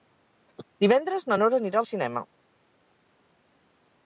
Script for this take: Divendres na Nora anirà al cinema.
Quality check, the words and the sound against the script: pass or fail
pass